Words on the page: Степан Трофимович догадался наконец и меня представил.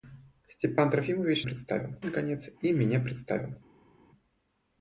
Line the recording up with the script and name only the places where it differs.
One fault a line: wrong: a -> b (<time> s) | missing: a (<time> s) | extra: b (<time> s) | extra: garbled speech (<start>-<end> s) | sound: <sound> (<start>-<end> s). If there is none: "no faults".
wrong: догадался -> представил (1.4 s)